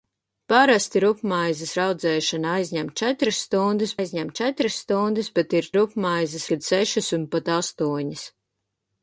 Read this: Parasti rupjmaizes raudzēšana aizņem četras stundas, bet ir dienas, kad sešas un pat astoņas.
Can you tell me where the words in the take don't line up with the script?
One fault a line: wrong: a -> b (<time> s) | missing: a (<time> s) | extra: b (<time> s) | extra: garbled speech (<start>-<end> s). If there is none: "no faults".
extra: aizņem četras stundas (4.0 s)
wrong: dienas -> rupjmaizes (5.8 s)